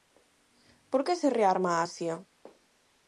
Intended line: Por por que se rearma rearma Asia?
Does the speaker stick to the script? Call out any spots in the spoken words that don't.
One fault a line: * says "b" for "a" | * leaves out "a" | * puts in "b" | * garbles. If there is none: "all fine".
* leaves out "por"
* leaves out "rearma"